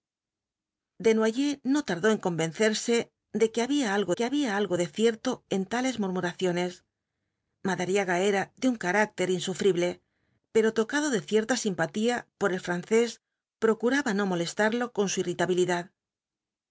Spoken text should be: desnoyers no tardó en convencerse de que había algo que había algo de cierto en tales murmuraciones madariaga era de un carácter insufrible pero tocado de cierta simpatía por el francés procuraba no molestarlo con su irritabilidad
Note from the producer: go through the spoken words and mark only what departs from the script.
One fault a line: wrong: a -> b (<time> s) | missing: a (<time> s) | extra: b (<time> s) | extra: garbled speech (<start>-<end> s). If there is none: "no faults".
no faults